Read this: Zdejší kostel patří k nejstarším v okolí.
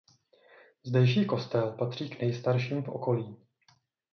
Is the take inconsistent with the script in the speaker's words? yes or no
no